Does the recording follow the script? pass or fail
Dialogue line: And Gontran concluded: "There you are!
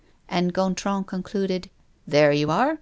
pass